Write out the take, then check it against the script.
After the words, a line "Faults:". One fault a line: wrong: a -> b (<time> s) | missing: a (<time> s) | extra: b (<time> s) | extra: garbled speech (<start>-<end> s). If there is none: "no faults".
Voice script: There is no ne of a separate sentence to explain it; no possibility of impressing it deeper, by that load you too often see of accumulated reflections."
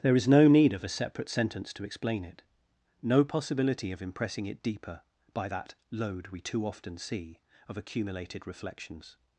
There is no need of a separate sentence to explain it; no possibility of impressing it deeper, by that load we too often see of accumulated reflections."
Faults:
wrong: ne -> need (0.5 s)
wrong: you -> we (6.3 s)